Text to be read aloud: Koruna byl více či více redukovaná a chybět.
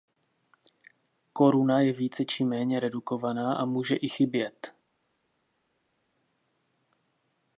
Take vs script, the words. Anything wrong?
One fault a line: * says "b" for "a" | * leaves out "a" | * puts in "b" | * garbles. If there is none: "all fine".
* says "je" for "byl"
* says "méně" for "více"
* puts in "může i"